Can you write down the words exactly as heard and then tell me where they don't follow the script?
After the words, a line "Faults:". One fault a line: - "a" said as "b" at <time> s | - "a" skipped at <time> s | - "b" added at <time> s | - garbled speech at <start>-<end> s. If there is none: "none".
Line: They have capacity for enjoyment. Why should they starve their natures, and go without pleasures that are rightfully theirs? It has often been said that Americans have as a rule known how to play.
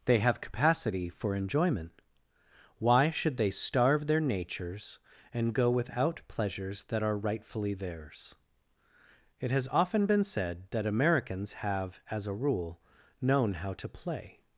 They have capacity for enjoyment. Why should they starve their natures, and go without pleasures that are rightfully theirs? It has often been said that Americans have as a rule known how to play.
Faults:
none